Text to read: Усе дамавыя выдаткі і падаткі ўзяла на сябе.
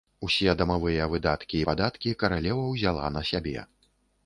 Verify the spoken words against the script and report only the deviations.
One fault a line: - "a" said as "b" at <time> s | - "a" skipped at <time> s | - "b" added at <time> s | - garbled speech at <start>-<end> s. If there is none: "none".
- "каралева" added at 2.2 s